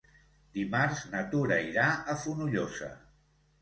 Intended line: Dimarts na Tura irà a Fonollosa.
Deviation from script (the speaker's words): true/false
false